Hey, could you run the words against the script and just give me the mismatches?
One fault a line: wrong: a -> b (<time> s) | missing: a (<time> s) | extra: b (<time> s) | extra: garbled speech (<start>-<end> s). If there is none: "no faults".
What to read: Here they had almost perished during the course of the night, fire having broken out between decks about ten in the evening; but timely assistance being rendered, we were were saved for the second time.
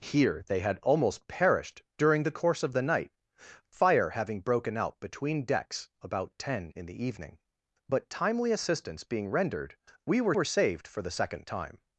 no faults